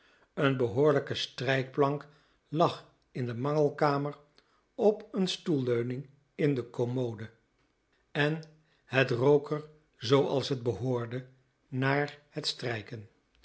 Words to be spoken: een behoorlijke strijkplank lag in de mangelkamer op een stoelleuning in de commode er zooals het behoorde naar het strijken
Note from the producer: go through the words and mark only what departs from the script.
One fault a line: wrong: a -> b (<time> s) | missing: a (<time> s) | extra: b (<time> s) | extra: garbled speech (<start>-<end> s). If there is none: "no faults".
extra: en het rook (8.1 s)